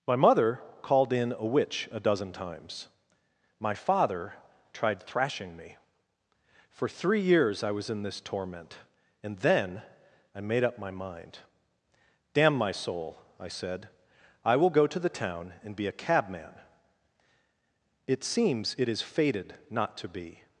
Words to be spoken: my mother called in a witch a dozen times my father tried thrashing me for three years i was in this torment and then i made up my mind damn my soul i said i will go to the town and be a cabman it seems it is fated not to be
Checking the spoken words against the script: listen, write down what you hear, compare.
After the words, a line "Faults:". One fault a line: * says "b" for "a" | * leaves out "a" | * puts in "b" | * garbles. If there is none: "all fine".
my mother called in a witch a dozen times my father tried thrashing me for three years i was in this torment and then i made up my mind damn my soul i said i will go to the town and be a cabman it seems it is fated not to be
Faults:
all fine